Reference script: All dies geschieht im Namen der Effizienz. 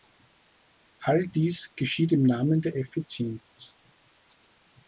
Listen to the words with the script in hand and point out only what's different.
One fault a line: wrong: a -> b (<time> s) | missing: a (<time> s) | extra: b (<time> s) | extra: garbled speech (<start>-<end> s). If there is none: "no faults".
no faults